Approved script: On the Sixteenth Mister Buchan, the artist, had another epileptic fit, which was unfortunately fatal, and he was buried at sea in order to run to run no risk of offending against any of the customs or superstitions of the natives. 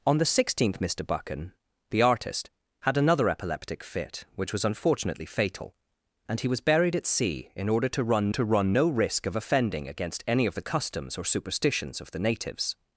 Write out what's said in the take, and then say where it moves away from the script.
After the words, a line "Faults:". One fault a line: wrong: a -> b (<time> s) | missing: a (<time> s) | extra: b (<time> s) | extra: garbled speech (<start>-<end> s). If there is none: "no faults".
On the Sixteenth Mister Buchan, the artist, had another epileptic fit, which was unfortunately fatal, and he was buried at sea in order to run to run no risk of offending against any of the customs or superstitions of the natives.
Faults:
no faults